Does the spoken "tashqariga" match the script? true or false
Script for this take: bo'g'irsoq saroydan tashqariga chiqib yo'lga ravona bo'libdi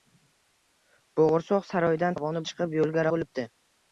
false